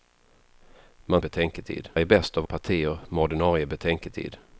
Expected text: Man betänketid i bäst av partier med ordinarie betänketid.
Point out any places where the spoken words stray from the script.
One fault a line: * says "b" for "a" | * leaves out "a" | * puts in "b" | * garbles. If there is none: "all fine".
all fine